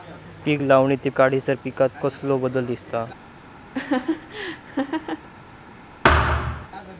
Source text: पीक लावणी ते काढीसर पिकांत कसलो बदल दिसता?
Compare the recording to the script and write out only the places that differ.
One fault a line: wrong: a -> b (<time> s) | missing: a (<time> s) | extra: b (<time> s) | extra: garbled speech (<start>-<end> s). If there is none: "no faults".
no faults